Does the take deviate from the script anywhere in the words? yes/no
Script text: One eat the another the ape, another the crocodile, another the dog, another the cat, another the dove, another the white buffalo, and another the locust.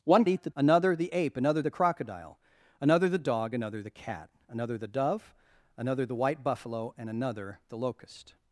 no